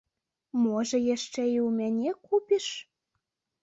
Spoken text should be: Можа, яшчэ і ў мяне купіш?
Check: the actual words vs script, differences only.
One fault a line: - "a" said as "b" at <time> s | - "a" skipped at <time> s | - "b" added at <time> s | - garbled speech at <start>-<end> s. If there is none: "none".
none